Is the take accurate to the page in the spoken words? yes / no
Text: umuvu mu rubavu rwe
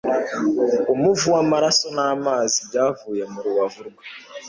no